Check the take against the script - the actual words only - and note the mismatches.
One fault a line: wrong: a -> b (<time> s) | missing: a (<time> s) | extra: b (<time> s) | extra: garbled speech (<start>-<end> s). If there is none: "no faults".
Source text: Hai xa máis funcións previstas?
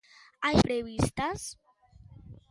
missing: xa máis funcións (0.6 s)